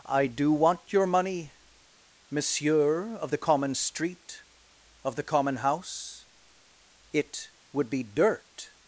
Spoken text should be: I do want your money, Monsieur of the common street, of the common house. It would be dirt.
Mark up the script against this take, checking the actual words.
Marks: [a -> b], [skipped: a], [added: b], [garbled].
I do want your money, Monsieur of the common street, of the common house. It would be dirt.